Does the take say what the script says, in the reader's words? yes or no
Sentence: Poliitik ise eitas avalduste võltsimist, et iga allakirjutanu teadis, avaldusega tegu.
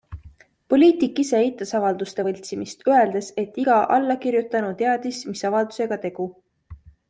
no